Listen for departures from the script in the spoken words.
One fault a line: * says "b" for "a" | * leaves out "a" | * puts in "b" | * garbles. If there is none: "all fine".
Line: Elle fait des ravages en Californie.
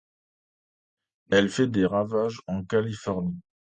all fine